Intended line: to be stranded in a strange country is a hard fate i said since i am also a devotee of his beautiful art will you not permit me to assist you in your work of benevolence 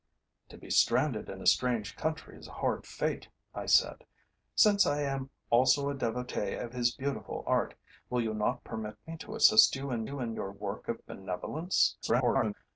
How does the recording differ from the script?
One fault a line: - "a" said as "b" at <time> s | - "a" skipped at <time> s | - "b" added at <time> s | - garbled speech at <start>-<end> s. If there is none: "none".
- "you in" added at 10.1 s
- garbled speech at 12.0-12.5 s